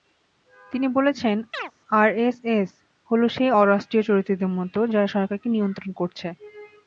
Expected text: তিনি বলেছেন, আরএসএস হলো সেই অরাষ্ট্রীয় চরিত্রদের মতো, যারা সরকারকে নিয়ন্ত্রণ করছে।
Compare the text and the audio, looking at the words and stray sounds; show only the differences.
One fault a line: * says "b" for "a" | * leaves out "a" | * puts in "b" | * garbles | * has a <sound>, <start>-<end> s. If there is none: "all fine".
* has a chirp, 1.5-1.7 s